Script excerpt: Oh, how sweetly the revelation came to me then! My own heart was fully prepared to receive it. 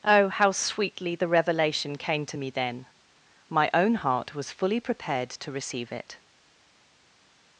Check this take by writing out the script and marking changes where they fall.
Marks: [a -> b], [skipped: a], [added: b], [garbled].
Oh, how sweetly the revelation came to me then! My own heart was fully prepared to receive it.